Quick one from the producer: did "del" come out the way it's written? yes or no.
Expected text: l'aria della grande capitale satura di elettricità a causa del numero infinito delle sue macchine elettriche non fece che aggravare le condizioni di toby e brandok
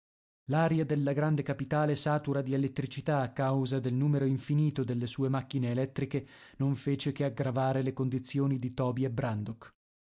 yes